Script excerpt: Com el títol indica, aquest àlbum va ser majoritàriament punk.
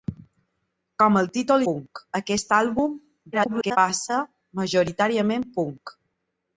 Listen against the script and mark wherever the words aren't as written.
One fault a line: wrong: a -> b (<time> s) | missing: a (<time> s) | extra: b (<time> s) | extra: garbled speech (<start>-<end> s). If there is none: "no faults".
wrong: indica -> punk (1.7 s)
extra: garbled speech (3.3-3.8 s)